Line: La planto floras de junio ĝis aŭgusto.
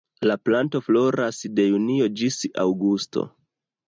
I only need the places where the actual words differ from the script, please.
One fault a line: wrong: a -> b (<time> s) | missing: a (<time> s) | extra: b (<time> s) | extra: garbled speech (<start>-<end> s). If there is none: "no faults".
no faults